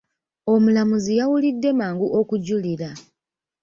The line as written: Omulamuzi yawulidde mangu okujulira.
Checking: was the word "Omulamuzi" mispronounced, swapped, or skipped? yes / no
no